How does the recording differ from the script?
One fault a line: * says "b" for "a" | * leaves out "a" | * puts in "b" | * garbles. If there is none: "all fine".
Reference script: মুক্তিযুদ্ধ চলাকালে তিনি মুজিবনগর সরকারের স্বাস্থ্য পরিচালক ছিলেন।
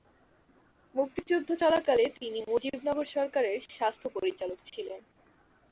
all fine